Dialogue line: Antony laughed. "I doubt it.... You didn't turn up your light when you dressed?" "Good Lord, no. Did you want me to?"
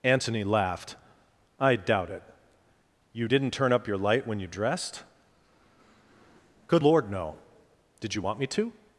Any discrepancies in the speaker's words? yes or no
no